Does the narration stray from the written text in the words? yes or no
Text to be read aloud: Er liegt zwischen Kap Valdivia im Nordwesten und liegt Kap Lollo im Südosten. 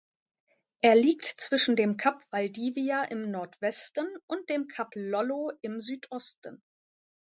yes